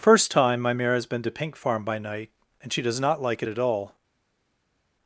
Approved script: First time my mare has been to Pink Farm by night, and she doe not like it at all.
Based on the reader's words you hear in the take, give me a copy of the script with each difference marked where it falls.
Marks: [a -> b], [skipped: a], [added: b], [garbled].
First time my mare has been to Pink Farm by night, and she [doe -> does] not like it at all.